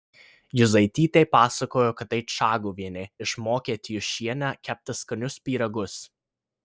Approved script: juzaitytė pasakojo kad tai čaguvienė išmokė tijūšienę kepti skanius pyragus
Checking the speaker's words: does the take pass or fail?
pass